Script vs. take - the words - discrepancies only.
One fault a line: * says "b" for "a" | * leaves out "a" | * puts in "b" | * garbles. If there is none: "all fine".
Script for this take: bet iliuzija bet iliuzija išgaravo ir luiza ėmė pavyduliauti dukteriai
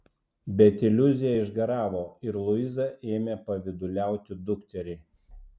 * leaves out "bet iliuzija"